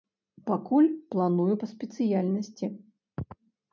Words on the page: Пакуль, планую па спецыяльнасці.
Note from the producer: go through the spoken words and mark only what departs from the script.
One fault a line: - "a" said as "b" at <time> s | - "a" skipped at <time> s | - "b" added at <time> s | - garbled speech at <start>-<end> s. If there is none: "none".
none